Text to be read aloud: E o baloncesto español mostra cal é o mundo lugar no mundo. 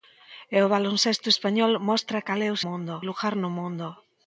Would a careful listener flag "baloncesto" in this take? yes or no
no